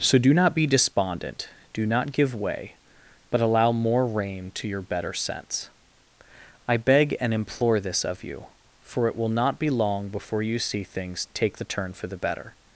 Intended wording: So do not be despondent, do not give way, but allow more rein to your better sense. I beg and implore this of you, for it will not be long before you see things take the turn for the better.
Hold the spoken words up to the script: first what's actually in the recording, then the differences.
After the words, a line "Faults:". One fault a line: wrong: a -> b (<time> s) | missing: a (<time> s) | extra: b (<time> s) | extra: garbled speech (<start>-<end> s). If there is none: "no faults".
So do not be despondent, do not give way, but allow more rein to your better sense. I beg and implore this of you, for it will not be long before you see things take the turn for the better.
Faults:
no faults